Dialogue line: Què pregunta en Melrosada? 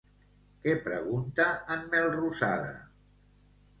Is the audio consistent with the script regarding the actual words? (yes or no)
yes